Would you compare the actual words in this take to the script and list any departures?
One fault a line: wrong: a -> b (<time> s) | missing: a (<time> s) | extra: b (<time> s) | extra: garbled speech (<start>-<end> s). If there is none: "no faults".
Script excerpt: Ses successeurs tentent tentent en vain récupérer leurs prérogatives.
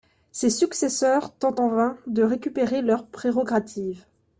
missing: tentent (1.6 s)
extra: de (2.1 s)